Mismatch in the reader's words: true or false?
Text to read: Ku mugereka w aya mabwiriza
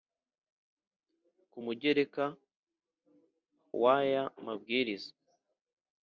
false